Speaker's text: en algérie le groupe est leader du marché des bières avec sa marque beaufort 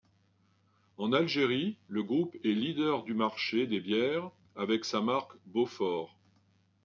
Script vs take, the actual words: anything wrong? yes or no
no